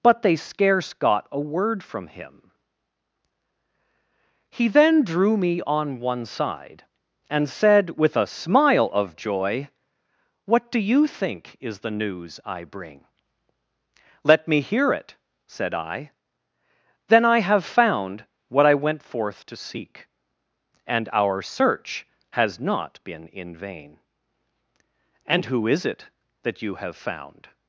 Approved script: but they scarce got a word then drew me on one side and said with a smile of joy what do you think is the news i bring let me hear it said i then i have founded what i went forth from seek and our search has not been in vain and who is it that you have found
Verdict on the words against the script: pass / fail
fail